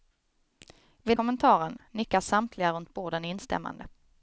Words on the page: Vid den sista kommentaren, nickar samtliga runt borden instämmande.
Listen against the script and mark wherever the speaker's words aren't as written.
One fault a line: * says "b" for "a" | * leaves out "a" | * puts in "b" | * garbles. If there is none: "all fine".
* leaves out "den sista"